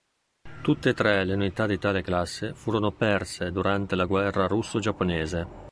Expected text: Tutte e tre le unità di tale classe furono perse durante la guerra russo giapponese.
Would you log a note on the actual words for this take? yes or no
no